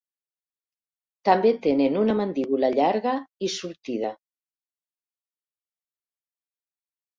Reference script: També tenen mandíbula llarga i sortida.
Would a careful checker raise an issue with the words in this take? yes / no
yes